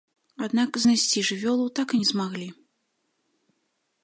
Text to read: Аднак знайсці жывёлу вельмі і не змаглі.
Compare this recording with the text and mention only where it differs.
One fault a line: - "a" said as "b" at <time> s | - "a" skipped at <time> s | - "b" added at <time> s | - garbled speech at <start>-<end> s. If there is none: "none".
- "вельмі" said as "так" at 1.8 s